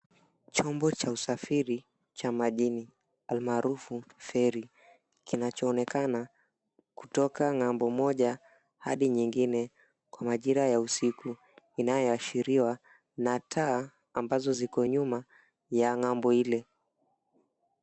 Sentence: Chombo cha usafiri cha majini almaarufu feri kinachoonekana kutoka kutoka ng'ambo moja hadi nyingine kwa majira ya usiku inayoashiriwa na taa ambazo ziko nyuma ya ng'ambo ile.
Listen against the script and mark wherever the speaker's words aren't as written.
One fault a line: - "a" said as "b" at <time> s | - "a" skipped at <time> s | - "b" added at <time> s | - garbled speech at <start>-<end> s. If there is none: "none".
- "kutoka" skipped at 7.4 s